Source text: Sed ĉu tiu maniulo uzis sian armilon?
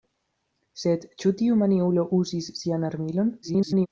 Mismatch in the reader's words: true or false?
true